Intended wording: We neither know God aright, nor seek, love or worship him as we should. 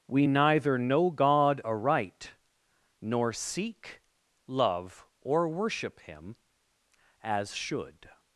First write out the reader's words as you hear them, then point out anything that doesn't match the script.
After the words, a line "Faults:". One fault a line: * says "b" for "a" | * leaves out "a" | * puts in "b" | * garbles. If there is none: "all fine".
We neither know God aright, nor seek, love or worship him as should.
Faults:
* leaves out "we"